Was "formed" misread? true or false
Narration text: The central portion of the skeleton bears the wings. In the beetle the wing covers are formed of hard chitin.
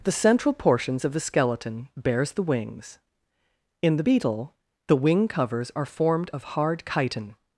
false